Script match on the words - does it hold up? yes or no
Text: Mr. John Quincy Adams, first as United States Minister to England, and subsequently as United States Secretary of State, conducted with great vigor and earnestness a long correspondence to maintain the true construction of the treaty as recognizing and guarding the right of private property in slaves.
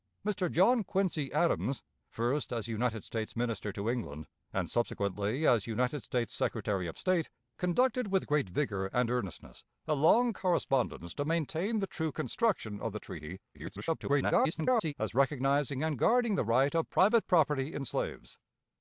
no